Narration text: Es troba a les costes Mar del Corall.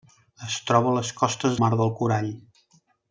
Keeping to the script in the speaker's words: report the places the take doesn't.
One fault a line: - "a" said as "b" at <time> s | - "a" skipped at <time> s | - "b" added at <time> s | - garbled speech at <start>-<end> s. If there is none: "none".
none